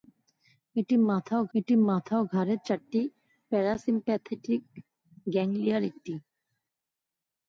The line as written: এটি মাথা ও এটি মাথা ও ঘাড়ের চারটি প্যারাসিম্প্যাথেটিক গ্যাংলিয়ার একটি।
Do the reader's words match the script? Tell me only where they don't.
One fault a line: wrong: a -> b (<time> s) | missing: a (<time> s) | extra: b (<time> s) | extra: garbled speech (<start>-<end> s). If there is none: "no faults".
no faults